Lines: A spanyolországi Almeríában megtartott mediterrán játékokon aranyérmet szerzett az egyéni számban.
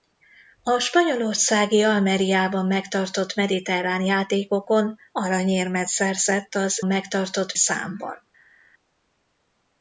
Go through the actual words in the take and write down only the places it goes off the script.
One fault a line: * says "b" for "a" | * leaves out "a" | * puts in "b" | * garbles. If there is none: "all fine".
* says "megtartott" for "egyéni"